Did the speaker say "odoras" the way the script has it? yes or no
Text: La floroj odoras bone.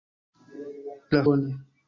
no